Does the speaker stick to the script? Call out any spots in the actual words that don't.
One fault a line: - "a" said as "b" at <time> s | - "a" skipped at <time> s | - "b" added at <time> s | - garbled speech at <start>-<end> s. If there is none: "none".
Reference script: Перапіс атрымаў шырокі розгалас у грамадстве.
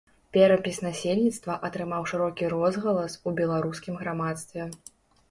- "насельніцтва" added at 0.8 s
- "беларускім" added at 3.4 s